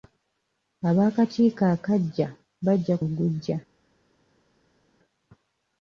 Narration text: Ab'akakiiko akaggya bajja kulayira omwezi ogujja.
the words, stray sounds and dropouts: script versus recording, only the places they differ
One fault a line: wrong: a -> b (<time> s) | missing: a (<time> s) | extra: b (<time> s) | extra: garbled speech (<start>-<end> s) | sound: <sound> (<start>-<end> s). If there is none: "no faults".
missing: kulayira omwezi (3.0 s)